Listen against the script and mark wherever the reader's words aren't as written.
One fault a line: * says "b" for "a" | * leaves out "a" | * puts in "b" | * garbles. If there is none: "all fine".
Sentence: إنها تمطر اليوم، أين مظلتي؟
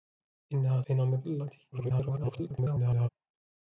* leaves out "تمطر اليوم"
* garbles